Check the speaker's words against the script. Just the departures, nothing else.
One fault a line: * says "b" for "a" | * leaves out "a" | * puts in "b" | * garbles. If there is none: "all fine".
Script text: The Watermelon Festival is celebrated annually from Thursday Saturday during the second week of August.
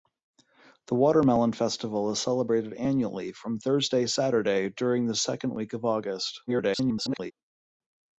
* garbles